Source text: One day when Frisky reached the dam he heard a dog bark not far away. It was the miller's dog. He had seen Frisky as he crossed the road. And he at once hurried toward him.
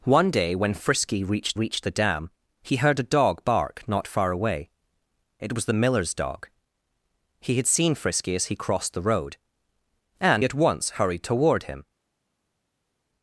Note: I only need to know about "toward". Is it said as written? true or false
true